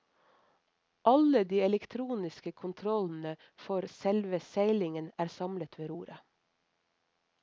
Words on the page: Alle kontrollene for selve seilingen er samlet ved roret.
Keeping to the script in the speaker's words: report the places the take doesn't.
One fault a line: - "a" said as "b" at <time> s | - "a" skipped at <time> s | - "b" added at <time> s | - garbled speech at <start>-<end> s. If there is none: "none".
- "de elektroniske" added at 1.5 s